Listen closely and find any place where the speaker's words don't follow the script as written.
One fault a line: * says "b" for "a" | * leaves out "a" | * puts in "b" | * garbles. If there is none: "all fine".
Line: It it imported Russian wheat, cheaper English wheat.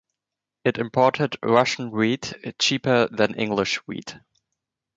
* leaves out "it"
* puts in "than"